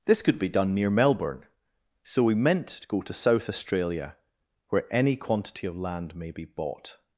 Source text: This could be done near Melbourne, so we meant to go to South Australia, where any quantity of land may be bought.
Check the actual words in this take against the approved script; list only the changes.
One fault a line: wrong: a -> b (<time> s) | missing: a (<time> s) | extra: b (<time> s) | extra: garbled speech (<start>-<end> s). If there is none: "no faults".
no faults